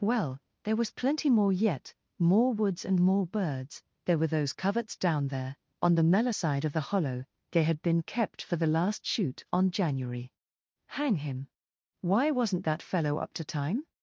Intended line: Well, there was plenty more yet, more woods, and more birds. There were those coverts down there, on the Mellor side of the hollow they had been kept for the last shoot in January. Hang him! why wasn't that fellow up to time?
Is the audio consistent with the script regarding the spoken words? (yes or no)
no